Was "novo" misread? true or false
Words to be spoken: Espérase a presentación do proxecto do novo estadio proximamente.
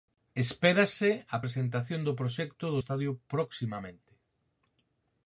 true